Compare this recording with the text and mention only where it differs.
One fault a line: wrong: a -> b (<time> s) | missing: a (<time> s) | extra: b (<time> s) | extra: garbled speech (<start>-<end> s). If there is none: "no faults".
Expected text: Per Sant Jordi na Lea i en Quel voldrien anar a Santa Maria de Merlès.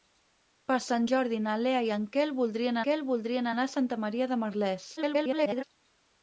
extra: Quel voldrien (2.9 s)
extra: garbled speech (5.0-5.6 s)